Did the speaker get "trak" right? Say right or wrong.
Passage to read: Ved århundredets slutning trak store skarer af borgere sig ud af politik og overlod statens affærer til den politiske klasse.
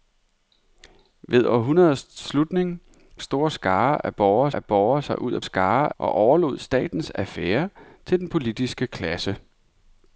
wrong